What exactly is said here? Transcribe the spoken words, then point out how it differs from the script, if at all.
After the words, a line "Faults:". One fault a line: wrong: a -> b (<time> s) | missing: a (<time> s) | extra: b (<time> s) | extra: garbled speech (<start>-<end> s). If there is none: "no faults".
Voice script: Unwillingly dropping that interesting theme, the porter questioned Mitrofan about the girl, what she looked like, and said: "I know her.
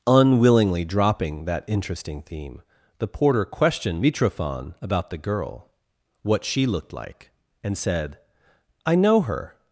Unwillingly dropping that interesting theme, the porter questioned Mitrofan about the girl, what she looked like, and said: "I know her.
Faults:
no faults